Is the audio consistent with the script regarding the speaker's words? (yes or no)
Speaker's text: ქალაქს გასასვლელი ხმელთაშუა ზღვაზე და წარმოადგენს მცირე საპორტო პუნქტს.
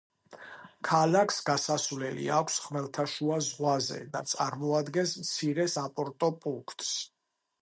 no